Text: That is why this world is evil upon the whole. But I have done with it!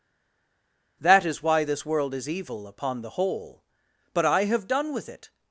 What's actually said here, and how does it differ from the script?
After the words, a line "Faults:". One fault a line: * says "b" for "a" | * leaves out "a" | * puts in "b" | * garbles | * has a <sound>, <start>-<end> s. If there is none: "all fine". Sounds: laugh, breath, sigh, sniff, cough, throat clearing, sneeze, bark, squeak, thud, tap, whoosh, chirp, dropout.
That is why this world is evil upon the whole. But I have done with it!
Faults:
all fine